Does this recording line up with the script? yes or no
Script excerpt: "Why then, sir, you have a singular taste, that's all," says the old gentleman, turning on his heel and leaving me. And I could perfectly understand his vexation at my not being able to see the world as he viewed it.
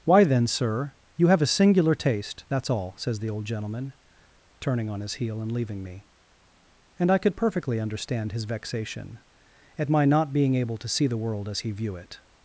no